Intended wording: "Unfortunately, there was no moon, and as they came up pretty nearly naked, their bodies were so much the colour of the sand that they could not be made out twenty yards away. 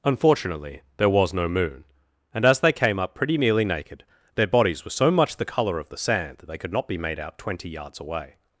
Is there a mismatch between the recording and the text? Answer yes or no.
no